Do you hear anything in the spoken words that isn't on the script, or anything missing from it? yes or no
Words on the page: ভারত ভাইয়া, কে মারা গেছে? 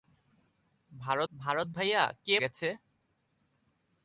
yes